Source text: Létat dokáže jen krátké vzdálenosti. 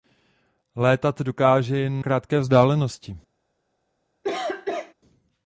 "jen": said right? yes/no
yes